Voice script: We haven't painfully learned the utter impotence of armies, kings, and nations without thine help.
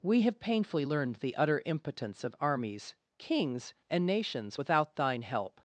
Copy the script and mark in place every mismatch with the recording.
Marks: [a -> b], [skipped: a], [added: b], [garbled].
We [haven't -> have] painfully learned the utter impotence of armies, kings, and nations without thine help.